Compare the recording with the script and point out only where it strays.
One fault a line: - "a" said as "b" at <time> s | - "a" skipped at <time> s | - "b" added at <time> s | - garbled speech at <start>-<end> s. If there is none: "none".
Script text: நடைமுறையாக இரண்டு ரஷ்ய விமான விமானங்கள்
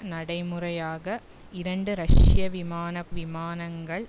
none